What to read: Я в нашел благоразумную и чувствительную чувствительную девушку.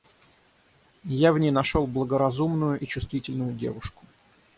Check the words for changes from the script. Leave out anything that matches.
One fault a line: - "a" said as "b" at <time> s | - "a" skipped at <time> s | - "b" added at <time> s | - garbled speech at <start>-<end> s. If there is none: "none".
- "ней" added at 1.4 s
- "чувствительную" skipped at 3.5 s